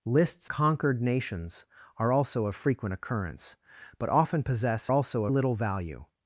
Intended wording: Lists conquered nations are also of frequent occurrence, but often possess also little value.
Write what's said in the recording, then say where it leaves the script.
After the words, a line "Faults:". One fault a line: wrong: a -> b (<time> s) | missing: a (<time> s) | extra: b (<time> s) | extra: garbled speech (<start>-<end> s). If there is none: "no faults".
Lists conquered nations are also of frequent occurrence, but often possess also little value.
Faults:
no faults